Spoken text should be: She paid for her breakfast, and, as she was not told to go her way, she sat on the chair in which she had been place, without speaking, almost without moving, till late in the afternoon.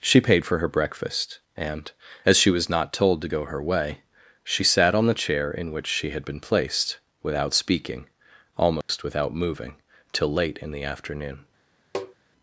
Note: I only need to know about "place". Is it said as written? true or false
false